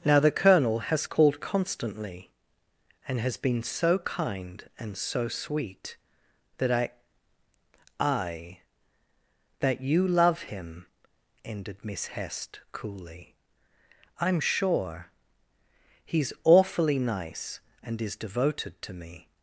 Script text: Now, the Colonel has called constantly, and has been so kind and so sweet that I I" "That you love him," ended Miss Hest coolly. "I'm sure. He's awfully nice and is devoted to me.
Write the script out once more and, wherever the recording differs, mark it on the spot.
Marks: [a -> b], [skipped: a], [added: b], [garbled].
Now, the Colonel has called constantly, and has been so kind and so sweet that I I" "That you love him," ended Miss Hest coolly. "I'm sure. He's awfully nice and is devoted to me.